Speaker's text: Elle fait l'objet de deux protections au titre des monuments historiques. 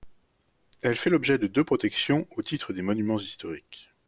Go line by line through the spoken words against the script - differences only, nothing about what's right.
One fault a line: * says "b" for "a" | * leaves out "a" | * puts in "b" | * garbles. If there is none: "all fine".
all fine